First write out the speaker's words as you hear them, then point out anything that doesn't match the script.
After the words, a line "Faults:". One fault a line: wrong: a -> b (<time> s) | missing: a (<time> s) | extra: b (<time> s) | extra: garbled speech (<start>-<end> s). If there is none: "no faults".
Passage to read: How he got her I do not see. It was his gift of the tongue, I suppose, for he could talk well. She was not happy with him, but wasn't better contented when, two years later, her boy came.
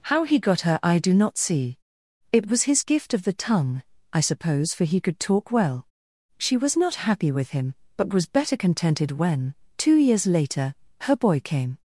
How he got her I do not see. It was his gift of the tongue, I suppose, for he could talk well. She was not happy with him, but was better contented when, two years later, her boy came.
Faults:
wrong: wasn't -> was (8.1 s)